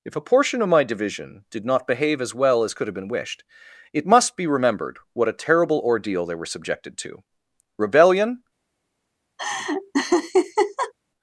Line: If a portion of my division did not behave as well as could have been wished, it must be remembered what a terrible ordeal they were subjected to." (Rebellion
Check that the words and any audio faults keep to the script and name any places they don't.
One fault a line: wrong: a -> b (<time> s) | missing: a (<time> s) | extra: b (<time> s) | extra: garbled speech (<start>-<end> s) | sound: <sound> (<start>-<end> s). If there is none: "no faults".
sound: laugh (9.4-10.9 s)